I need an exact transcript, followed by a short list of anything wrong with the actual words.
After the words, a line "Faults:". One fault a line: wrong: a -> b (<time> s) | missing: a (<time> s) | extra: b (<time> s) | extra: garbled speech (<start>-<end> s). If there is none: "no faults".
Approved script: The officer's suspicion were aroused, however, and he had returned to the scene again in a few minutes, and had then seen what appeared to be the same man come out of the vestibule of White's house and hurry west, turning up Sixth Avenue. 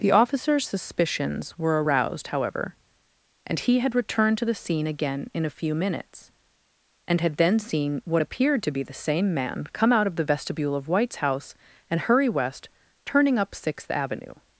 The officer's suspicions were aroused, however, and he had returned to the scene again in a few minutes, and had then seen what appeared to be the same man come out of the vestibule of White's house and hurry west, turning up Sixth Avenue.
Faults:
wrong: suspicion -> suspicions (0.7 s)